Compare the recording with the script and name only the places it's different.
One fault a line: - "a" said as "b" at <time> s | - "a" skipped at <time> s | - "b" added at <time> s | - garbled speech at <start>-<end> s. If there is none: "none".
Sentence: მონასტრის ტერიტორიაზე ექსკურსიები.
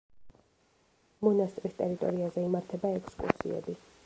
- "იმართება" added at 2.5 s